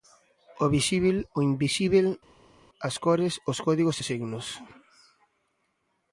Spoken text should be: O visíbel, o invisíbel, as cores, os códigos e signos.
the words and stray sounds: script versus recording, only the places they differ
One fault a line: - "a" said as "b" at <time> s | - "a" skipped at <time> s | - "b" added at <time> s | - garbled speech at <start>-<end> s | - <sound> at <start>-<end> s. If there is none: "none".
none